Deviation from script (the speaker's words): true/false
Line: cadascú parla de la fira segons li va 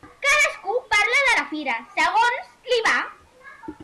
false